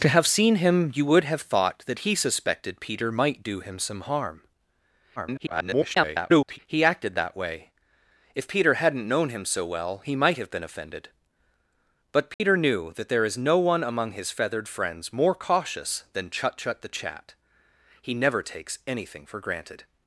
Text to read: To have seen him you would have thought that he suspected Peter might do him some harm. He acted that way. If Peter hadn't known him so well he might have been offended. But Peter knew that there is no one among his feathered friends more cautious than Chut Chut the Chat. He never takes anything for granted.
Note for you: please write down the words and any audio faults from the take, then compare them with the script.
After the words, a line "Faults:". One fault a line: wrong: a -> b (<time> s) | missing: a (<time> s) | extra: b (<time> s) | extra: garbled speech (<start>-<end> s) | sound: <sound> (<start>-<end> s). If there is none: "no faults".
To have seen him you would have thought that he suspected Peter might do him some harm. [garbled] He acted that way. If Peter hadn't known him so well he might have been offended. But Peter knew that there is no one among his feathered friends more cautious than Chut Chut the Chat. He never takes anything for granted.
Faults:
extra: garbled speech (5.2-6.6 s)
sound: dropout (12.3-12.4 s)